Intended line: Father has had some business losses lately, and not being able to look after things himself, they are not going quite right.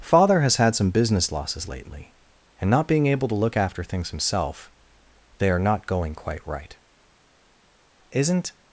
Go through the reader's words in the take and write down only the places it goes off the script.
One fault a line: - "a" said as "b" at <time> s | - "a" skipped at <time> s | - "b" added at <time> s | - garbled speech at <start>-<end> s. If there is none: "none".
- "Isn't" added at 8.1 s